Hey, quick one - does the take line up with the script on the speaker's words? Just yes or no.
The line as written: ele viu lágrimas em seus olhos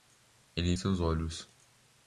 no